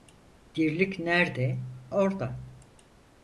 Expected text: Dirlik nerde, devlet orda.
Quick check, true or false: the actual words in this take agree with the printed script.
false